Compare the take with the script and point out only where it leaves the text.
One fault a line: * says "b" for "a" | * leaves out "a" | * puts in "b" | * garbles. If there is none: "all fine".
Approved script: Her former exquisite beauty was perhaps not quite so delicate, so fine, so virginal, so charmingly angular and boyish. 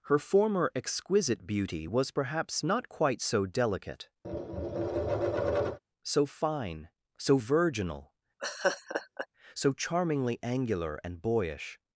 all fine